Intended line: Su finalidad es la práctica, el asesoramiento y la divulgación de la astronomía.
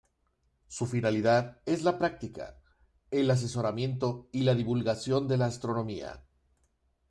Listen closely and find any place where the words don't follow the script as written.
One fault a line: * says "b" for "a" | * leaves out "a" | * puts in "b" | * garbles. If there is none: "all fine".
all fine